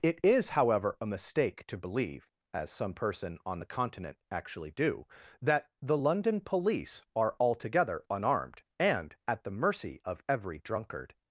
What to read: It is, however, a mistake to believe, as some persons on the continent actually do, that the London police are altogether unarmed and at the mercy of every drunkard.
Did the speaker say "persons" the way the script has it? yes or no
no